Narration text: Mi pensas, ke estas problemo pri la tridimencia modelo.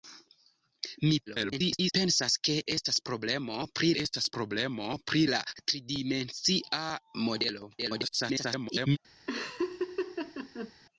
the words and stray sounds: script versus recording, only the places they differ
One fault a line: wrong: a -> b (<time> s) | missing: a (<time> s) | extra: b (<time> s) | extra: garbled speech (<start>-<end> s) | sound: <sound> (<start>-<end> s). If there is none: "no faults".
extra: garbled speech (1.3-1.9 s)
extra: estas problemo pri (4.0 s)
extra: garbled speech (7.8-9.0 s)
sound: laugh (9.3-10.7 s)